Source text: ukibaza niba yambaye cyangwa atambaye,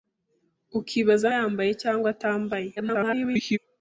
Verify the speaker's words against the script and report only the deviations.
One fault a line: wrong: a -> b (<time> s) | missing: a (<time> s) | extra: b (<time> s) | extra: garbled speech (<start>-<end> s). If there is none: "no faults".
missing: niba (1.3 s)
extra: garbled speech (2.8-3.6 s)